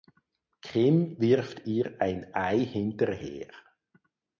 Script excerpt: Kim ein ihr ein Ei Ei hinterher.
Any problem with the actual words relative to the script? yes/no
yes